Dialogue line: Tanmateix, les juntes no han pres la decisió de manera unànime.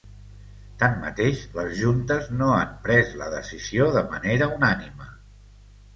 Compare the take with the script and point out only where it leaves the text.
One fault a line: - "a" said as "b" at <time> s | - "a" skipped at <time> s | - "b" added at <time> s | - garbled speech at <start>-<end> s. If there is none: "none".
none